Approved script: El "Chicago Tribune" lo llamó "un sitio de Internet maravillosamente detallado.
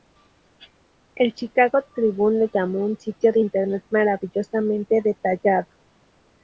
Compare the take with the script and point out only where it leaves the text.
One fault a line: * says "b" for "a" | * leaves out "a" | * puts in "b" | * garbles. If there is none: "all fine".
all fine